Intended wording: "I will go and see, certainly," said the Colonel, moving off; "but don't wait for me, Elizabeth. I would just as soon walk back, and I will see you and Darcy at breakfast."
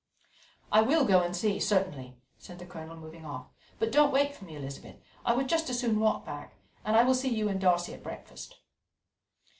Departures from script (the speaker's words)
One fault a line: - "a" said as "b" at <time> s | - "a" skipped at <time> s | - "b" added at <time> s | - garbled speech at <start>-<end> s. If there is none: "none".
none